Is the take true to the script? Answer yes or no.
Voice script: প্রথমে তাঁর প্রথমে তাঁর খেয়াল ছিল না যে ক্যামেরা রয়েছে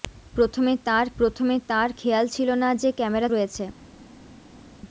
yes